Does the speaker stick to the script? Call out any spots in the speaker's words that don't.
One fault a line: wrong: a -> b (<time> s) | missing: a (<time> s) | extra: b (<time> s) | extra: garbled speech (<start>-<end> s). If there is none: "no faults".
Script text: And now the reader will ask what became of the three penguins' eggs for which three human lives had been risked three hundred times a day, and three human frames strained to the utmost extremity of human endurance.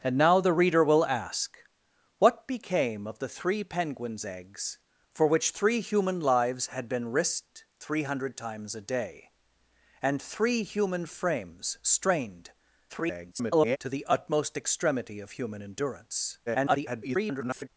extra: garbled speech (12.9-13.8 s)
extra: garbled speech (16.5-17.7 s)